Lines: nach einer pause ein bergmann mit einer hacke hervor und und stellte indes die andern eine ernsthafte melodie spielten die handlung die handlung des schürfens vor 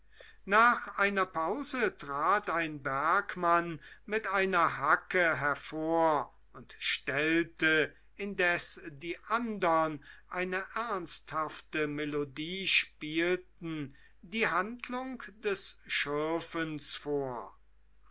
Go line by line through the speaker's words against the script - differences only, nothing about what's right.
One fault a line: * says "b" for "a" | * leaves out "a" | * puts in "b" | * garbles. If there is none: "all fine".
* puts in "trat"
* leaves out "und"
* leaves out "die handlung"